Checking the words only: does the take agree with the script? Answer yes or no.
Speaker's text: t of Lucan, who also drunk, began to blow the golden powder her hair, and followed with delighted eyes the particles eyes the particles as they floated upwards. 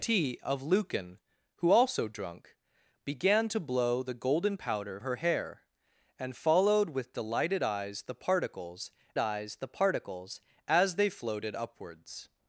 yes